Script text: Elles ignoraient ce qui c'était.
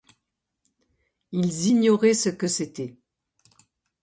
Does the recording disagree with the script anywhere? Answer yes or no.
yes